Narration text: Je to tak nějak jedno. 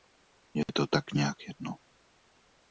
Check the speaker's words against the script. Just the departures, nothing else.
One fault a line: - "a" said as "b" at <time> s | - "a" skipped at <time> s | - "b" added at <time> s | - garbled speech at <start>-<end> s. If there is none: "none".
none